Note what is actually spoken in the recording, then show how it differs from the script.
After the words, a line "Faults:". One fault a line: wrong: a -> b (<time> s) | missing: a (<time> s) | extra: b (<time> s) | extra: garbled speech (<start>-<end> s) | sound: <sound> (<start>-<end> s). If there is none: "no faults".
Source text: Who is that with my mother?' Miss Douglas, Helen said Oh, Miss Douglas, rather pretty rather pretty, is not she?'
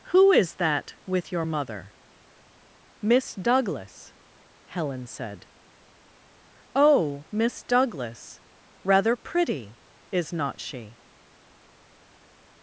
Who is that with your mother?' Miss Douglas, Helen said Oh, Miss Douglas, rather pretty, is not she?'
Faults:
wrong: my -> your (1.3 s)
missing: rather pretty (9.8 s)